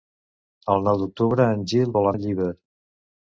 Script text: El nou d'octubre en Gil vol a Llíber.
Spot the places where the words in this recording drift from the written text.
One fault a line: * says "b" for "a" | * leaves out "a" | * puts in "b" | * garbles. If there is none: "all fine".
all fine